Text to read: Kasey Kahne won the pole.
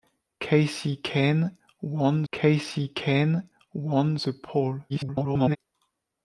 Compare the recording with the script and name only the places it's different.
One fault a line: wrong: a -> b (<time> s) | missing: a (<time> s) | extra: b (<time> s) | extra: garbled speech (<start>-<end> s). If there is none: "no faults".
extra: kasey Kahne won (2.3 s)
extra: garbled speech (4.9-5.6 s)